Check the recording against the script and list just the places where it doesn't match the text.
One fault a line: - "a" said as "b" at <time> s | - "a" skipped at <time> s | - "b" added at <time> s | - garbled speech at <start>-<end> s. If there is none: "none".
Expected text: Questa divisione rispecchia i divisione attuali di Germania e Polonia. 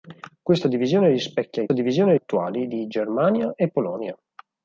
none